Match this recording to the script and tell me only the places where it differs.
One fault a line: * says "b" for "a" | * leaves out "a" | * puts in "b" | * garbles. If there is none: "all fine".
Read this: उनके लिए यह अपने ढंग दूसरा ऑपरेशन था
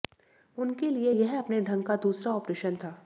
* puts in "का"